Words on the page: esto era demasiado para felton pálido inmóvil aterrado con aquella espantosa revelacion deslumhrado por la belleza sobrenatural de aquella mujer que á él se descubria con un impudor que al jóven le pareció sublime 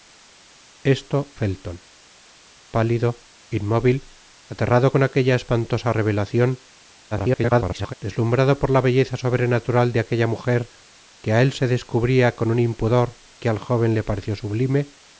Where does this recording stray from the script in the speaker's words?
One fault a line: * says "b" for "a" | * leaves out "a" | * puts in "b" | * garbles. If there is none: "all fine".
* leaves out "era demasiado para"
* garbles